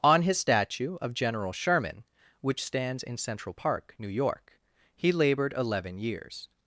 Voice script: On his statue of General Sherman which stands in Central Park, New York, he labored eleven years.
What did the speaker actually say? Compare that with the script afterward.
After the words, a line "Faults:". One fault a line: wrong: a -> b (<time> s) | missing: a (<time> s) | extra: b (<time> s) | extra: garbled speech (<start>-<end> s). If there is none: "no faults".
On his statue of General Sherman which stands in Central Park, New York, he labored eleven years.
Faults:
no faults